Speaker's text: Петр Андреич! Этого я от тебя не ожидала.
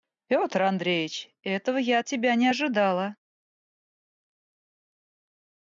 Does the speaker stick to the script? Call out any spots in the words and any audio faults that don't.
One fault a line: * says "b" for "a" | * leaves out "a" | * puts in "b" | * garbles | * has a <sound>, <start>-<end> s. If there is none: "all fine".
all fine